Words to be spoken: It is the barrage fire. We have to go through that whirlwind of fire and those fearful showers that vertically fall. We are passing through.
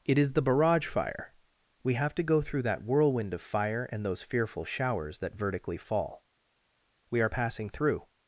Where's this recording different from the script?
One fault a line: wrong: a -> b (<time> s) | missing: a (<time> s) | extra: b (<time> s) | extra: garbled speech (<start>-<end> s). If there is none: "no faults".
no faults